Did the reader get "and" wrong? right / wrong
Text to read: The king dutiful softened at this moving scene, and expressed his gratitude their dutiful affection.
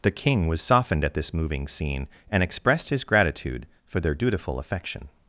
right